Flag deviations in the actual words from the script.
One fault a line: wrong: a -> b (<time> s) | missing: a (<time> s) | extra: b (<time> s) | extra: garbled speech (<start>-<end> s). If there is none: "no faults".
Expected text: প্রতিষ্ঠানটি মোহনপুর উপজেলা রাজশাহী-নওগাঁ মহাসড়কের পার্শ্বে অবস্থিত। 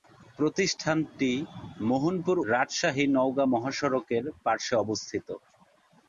missing: উপজেলা (2.4 s)